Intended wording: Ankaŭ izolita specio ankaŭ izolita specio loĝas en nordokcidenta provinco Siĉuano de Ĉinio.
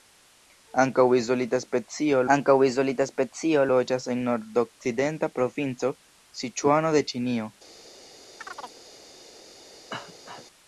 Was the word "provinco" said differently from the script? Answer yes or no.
no